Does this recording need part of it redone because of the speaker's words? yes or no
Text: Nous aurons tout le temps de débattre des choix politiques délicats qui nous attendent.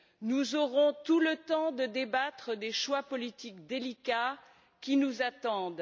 no